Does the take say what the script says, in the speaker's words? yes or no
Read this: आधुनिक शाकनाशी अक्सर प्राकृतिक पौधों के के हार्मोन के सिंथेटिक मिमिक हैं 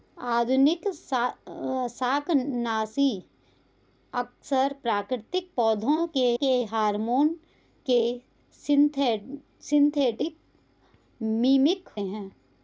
yes